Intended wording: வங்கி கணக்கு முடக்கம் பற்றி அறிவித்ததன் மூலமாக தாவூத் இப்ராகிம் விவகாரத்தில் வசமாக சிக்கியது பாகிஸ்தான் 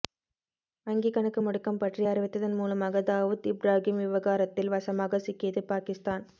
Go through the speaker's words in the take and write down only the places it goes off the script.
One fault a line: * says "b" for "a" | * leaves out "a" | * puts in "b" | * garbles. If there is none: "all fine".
all fine